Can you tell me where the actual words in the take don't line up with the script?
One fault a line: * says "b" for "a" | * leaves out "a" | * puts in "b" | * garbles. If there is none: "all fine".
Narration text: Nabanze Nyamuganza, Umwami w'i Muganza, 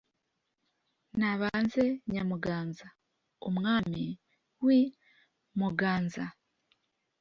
all fine